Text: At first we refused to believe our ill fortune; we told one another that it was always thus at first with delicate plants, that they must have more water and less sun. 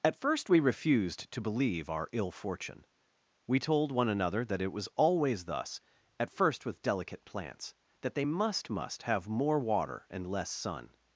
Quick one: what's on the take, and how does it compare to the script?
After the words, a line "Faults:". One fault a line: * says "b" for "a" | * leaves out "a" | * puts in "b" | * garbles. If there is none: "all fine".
At first we refused to believe our ill fortune; we told one another that it was always thus at first with delicate plants, that they must must have more water and less sun.
Faults:
* puts in "must"